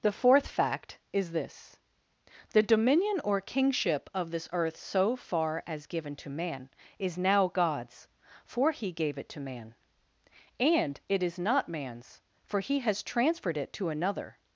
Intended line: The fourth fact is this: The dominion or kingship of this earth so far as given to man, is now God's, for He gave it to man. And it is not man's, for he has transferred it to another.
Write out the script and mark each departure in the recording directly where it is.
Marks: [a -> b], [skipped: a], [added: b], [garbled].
The fourth fact is this: The dominion or kingship of this earth so far as given to man, is now God's, for He gave it to man. And it is not man's, for he has transferred it to another.